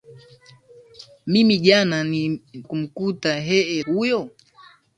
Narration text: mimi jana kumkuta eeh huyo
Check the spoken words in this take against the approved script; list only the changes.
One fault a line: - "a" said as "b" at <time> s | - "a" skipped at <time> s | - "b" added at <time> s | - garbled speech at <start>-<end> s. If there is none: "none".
none